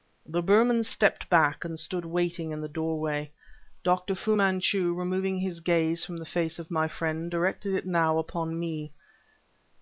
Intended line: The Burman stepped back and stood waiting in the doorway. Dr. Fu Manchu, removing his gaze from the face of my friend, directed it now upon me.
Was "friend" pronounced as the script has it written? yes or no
yes